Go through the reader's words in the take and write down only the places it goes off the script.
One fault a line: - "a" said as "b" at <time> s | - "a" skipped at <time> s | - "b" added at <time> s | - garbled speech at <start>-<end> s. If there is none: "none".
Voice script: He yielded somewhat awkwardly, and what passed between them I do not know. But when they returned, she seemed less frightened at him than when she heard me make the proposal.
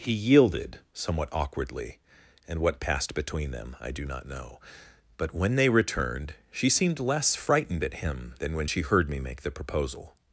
none